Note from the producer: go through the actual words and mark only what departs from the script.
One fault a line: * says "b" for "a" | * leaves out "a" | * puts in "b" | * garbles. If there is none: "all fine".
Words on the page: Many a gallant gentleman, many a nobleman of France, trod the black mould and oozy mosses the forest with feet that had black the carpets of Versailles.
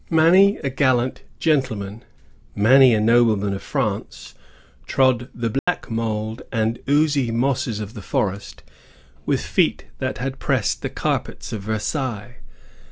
* puts in "of"
* says "pressed" for "black"